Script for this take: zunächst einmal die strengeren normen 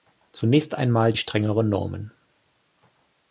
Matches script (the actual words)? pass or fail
pass